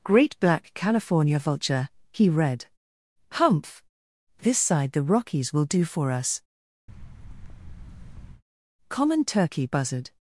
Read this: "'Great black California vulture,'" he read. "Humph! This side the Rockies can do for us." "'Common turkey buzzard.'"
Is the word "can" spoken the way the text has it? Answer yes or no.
no